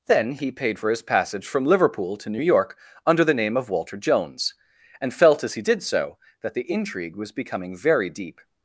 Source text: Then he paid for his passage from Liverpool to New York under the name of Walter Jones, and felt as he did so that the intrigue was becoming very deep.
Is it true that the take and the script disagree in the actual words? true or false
false